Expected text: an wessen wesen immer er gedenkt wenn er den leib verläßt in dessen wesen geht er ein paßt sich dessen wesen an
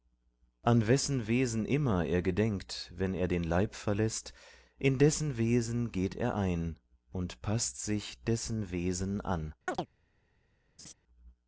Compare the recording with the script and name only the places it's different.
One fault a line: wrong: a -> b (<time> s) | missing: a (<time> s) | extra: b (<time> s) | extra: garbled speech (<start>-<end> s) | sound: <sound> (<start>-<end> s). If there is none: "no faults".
extra: und (7.1 s)
sound: chirp (9.7-9.9 s)
sound: laugh (10.8-10.9 s)